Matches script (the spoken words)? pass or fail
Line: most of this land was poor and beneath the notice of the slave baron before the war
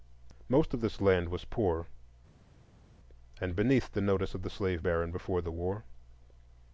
pass